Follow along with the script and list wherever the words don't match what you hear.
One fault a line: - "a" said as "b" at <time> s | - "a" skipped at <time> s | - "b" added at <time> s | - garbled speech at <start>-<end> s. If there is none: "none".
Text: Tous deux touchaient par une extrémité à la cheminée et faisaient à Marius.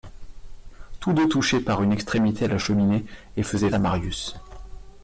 none